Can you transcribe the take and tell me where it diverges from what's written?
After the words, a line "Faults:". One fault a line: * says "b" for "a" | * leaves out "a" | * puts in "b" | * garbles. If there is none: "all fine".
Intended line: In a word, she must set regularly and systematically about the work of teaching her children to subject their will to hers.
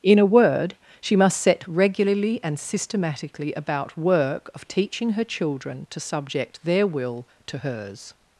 In a word, she must set regularly and systematically about work of teaching her children to subject their will to hers.
Faults:
* leaves out "the"